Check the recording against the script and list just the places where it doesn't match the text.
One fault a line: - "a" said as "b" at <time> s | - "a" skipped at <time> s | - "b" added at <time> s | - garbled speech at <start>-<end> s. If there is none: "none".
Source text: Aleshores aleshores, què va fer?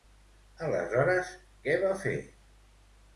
- "aleshores" skipped at 1.3 s